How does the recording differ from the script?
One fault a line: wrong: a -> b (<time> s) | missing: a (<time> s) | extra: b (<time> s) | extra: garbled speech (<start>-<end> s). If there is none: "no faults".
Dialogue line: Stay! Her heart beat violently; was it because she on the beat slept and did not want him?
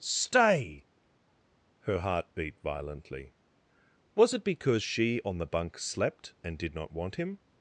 wrong: beat -> bunk (5.5 s)